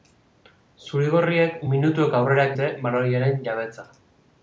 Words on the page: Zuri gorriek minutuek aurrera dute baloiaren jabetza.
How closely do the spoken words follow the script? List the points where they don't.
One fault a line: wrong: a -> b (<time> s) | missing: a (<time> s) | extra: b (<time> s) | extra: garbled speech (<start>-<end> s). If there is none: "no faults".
no faults